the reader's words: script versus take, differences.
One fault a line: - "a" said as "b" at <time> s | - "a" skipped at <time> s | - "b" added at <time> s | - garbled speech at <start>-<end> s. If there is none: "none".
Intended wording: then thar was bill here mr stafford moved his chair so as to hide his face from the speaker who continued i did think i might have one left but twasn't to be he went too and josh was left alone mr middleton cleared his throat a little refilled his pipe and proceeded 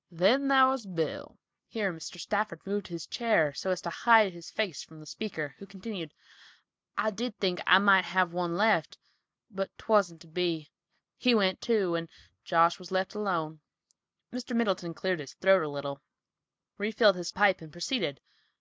none